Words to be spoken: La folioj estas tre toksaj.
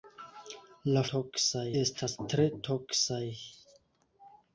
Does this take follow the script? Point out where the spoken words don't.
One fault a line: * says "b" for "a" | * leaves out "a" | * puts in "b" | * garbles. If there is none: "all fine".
* says "toksaj" for "folioj"